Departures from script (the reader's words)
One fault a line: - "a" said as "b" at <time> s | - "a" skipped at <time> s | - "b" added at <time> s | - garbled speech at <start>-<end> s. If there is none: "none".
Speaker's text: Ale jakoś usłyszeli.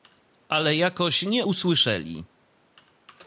- "nie" added at 1.2 s